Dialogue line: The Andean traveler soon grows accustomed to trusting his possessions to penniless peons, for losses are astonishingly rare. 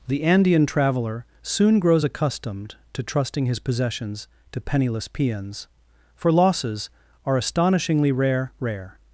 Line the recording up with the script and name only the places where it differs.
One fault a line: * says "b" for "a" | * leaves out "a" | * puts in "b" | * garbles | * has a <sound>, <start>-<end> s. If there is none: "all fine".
* puts in "rare"